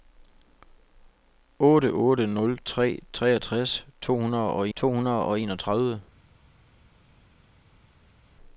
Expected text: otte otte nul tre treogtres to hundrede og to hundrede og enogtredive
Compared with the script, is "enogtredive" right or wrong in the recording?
right